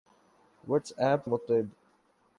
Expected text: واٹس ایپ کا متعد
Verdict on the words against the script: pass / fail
fail